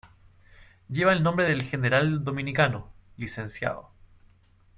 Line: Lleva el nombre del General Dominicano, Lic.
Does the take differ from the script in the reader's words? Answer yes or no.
no